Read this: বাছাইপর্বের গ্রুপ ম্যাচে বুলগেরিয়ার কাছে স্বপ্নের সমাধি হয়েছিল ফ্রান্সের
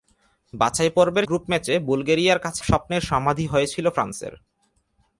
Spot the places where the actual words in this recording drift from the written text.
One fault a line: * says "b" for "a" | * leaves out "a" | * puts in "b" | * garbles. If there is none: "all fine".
all fine